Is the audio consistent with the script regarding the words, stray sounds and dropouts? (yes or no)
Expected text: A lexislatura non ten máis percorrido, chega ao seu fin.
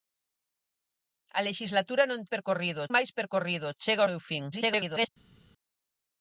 no